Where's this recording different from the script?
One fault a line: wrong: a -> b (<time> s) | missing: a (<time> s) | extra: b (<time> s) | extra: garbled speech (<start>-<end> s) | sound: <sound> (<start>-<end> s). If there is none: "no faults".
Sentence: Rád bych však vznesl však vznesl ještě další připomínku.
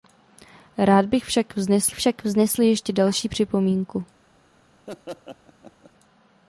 sound: laugh (4.9-5.9 s)